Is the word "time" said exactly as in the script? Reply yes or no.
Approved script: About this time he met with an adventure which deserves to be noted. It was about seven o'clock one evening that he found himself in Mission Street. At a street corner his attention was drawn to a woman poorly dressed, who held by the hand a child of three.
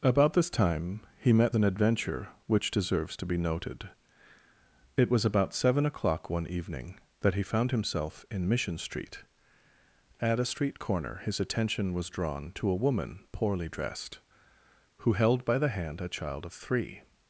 yes